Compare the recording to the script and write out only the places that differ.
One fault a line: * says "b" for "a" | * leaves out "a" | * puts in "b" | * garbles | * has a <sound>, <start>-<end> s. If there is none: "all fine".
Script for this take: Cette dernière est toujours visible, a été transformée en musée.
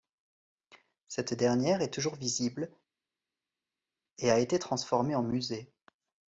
* puts in "et"